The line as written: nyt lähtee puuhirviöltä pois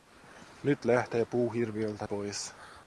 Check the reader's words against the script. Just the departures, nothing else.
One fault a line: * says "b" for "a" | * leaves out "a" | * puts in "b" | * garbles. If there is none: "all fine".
all fine